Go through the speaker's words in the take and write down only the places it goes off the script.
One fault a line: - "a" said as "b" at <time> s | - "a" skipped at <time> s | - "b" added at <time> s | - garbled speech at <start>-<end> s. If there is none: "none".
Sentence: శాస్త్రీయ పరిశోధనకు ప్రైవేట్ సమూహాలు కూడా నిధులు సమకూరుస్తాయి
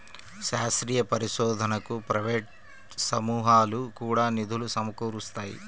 none